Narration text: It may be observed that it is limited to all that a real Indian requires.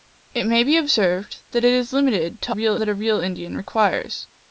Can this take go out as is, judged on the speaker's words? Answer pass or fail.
fail